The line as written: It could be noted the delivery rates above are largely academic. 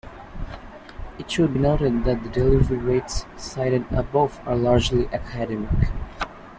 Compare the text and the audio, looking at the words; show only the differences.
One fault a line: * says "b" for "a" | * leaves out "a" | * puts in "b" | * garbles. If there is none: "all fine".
* says "should" for "could"
* puts in "that"
* puts in "cited"